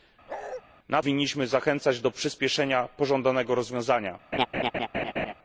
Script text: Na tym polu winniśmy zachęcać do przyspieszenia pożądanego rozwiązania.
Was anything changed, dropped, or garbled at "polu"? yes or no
yes